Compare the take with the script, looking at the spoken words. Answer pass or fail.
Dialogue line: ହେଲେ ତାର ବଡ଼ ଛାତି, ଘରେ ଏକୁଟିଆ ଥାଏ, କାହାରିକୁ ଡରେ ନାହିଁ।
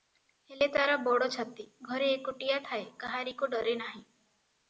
pass